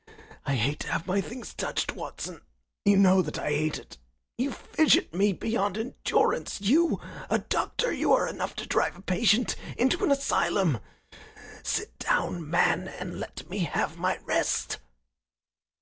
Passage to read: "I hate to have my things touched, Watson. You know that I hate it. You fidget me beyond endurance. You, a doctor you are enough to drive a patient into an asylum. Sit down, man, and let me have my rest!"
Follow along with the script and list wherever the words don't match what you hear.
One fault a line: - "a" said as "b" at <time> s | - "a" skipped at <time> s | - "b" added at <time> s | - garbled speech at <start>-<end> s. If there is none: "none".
none